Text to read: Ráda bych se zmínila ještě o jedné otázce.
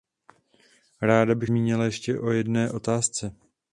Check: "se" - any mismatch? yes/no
yes